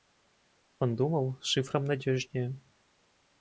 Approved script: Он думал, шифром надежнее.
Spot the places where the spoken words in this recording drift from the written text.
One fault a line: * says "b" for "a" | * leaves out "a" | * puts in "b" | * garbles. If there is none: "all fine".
all fine